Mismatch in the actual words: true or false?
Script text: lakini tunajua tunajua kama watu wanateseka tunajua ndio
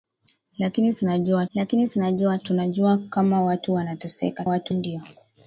true